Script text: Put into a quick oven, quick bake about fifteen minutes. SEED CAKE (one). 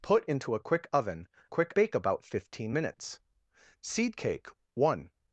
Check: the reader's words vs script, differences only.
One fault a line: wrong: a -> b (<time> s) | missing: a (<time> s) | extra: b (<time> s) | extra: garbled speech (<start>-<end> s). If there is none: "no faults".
no faults